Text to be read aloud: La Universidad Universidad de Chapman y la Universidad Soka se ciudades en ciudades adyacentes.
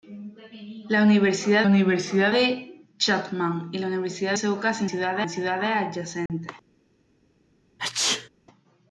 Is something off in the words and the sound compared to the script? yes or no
yes